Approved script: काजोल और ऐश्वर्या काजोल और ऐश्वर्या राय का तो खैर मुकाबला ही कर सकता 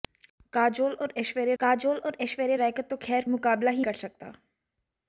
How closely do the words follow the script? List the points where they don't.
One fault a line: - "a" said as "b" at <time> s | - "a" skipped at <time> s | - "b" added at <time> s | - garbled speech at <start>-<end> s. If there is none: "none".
none